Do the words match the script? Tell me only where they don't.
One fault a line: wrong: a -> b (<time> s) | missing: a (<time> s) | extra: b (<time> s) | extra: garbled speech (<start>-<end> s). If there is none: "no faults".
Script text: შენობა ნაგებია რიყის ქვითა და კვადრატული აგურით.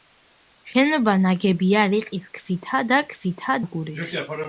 wrong: კვადრატული -> ქვითა (3.1 s)